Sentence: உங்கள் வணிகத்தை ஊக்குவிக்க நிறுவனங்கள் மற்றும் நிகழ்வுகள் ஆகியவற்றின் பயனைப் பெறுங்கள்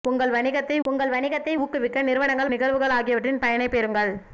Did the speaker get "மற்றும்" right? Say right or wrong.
wrong